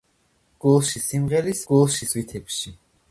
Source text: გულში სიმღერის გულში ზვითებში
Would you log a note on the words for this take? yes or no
no